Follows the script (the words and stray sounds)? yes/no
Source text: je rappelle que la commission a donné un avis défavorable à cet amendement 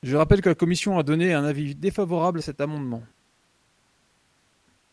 yes